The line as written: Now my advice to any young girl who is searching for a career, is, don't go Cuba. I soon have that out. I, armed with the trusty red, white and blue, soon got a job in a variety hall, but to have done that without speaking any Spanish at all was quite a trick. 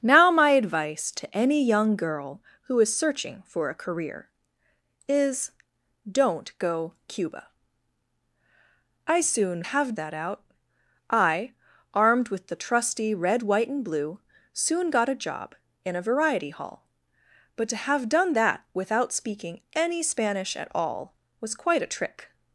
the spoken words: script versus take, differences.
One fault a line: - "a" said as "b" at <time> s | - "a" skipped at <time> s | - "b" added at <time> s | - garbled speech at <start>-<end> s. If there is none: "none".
none